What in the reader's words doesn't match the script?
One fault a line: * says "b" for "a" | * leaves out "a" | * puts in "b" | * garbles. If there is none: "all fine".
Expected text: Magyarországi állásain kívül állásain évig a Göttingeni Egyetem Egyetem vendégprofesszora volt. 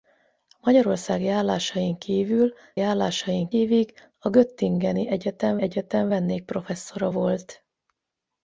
all fine